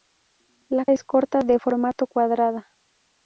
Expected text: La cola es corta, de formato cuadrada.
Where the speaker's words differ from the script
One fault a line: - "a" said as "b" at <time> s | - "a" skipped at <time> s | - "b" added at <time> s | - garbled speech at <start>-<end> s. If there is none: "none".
- "cola" skipped at 0.8 s